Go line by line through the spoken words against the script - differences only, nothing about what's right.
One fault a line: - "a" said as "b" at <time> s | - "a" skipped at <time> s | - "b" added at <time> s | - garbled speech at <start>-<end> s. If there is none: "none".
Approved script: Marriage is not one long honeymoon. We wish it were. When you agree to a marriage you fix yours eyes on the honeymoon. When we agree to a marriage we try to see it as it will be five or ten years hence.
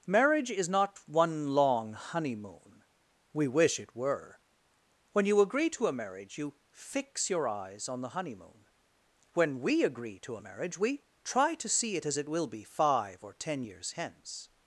- "yours" said as "your" at 7.3 s